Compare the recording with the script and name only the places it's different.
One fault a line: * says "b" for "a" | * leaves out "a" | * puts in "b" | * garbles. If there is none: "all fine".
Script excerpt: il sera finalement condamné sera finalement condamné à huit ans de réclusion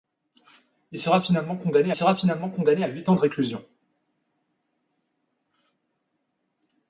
all fine